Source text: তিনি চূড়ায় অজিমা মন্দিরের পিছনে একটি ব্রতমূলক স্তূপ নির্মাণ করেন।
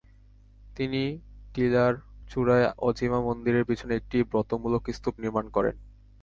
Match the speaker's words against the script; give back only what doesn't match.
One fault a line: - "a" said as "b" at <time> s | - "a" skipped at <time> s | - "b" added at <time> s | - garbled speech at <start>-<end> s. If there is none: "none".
- "টিলার" added at 1.5 s